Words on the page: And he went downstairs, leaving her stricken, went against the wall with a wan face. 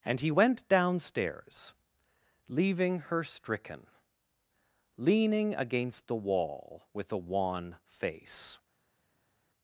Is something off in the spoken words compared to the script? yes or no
yes